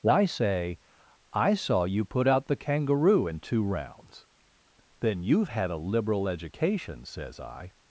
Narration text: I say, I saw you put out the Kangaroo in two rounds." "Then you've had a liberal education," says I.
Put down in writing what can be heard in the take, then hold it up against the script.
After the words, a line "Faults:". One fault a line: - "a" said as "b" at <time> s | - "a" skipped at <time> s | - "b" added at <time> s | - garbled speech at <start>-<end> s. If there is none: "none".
I say, I saw you put out the Kangaroo in two rounds." "Then you've had a liberal education," says I.
Faults:
none